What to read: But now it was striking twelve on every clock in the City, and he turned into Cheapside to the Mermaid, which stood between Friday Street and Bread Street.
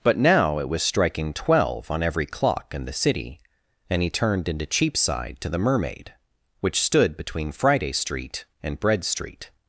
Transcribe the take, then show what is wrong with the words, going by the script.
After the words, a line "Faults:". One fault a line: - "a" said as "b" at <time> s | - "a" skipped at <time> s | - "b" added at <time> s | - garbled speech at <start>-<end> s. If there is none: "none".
But now it was striking twelve on every clock in the City, and he turned into Cheapside to the Mermaid, which stood between Friday Street and Bread Street.
Faults:
none